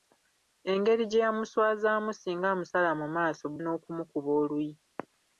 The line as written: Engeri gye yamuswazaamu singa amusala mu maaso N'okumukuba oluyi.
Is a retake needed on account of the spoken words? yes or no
no